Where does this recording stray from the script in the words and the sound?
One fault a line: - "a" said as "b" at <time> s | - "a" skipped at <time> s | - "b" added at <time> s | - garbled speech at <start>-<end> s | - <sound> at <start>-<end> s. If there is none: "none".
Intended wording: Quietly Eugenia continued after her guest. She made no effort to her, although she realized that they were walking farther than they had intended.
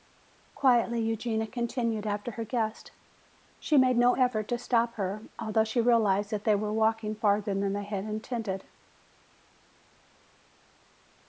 - "stop" added at 4.6 s